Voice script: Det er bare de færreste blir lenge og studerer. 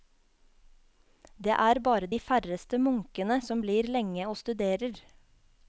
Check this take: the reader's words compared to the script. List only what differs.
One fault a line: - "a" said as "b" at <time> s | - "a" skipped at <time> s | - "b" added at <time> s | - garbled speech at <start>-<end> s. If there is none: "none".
- "munkene som" added at 2.8 s